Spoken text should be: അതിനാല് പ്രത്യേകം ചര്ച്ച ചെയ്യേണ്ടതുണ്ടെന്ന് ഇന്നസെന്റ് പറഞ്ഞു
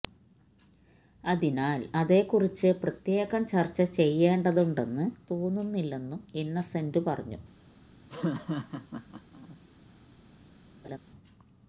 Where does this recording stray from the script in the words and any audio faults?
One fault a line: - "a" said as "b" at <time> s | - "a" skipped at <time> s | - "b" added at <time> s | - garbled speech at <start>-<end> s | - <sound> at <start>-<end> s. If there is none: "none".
- "അതേക്കുറിച്ച്" added at 1.9 s
- "തോന്നുന്നില്ലെന്നും" added at 5.3 s
- laugh at 8.1-9.6 s
- laugh at 10.8-11.0 s